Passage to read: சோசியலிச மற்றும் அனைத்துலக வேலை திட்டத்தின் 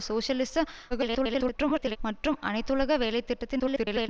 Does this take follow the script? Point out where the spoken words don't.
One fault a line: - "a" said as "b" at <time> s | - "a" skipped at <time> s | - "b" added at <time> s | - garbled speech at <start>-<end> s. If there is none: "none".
- garbled speech at 0.9-2.0 s
- garbled speech at 3.6-4.1 s